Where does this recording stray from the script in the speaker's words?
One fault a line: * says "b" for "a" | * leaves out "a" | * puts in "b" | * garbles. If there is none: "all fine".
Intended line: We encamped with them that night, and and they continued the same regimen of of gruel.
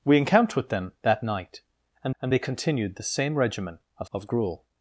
all fine